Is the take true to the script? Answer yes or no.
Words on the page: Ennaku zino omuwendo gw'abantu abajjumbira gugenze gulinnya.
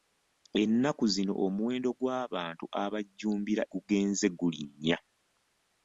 yes